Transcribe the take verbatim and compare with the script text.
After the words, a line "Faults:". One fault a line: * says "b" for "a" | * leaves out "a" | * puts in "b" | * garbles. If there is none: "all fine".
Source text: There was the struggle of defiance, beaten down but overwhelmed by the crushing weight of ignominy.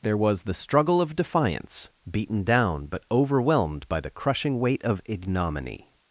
There was the struggle of defiance, beaten down but overwhelmed by the crushing weight of ignominy.
Faults:
all fine